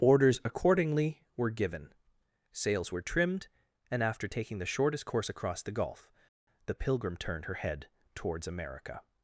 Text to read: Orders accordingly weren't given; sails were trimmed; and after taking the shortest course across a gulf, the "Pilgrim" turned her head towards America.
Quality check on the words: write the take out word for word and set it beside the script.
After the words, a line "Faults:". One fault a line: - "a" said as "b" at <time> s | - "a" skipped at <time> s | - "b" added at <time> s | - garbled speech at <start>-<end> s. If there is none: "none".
Orders accordingly were given; sails were trimmed; and after taking the shortest course across the gulf, the "Pilgrim" turned her head towards America.
Faults:
- "weren't" said as "were" at 1.4 s
- "a" said as "the" at 5.6 s